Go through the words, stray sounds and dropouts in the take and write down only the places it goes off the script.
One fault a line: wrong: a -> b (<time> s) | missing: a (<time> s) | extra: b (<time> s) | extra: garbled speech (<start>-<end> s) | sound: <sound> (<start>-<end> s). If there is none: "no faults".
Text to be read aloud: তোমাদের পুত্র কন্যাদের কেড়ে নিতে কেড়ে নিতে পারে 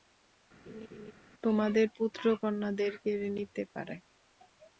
sound: laugh (0.7-1.1 s)
missing: কেড়ে নিতে (3.6 s)